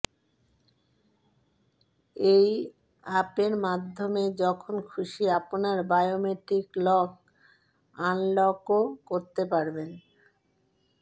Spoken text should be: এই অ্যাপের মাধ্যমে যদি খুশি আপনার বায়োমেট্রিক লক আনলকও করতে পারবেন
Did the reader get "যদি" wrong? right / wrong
wrong